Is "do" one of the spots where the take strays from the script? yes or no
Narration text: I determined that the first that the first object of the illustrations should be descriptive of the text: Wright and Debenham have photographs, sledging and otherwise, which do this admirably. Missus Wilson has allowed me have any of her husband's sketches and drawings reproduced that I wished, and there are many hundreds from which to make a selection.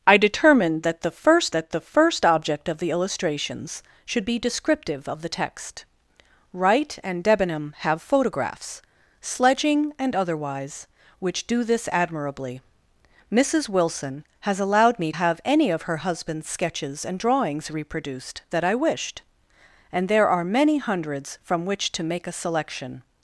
no